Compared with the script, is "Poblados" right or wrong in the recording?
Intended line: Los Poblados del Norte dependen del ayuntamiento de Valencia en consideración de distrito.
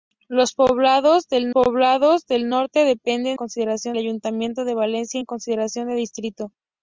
right